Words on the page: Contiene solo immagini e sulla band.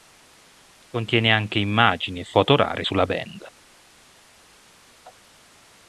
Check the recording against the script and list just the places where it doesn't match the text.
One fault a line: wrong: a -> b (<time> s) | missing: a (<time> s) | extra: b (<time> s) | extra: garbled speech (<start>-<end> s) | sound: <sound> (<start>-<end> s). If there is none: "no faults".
wrong: solo -> anche (1.3 s)
extra: foto rare (2.2 s)